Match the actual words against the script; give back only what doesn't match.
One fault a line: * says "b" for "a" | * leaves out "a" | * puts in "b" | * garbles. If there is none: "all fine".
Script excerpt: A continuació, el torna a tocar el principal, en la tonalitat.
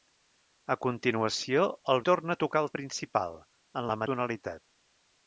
all fine